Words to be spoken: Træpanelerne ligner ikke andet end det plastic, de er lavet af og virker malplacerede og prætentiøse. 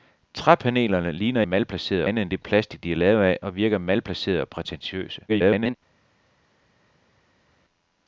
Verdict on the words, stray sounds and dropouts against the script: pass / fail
fail